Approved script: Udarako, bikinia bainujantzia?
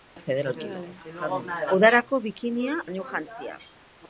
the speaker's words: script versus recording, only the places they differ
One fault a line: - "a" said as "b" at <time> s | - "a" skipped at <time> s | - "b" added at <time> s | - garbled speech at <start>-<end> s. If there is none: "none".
none